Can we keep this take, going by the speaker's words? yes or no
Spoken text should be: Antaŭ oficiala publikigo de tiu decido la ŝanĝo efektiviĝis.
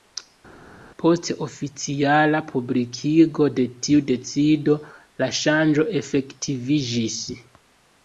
no